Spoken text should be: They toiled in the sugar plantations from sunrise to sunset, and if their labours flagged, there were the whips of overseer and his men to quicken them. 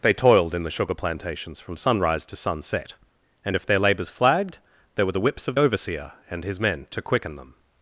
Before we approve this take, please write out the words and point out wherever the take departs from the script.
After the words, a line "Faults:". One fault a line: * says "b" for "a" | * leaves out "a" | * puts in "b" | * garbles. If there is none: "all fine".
They toiled in the sugar plantations from sunrise to sunset, and if their labours flagged, there were the whips of overseer and his men to quicken them.
Faults:
all fine